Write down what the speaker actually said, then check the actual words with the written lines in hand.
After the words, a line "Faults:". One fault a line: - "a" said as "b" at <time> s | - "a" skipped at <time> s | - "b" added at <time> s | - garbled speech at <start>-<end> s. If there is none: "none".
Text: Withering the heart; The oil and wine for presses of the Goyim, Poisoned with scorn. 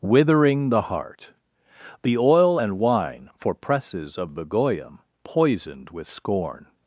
Withering the heart; The oil and wine for presses of the Goyim, Poisoned with scorn.
Faults:
none